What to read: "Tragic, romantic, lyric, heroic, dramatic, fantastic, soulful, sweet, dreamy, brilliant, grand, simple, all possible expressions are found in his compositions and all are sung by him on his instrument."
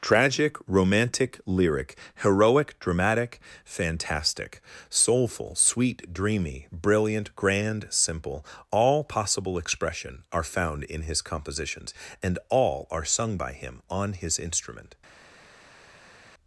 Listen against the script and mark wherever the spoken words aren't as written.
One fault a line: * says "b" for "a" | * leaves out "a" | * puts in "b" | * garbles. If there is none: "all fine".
* says "expression" for "expressions"